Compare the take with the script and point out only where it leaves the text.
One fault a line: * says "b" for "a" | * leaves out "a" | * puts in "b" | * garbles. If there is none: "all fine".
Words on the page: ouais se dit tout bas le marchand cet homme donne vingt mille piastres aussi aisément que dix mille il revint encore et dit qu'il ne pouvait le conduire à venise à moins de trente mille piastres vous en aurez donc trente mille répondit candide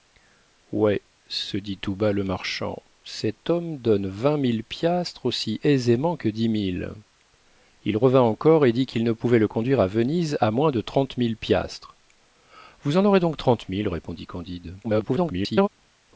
* garbles